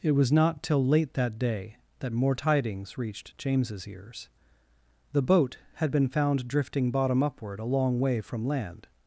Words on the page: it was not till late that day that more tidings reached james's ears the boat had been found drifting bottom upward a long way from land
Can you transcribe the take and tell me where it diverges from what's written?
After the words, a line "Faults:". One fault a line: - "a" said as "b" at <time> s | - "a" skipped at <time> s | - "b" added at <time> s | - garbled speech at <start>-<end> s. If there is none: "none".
it was not till late that day that more tidings reached james's ears the boat had been found drifting bottom upward a long way from land
Faults:
none